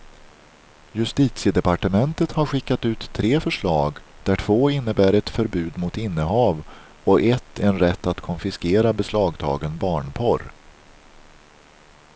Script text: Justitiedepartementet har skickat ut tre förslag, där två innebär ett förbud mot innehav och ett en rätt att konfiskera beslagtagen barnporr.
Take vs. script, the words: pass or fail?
pass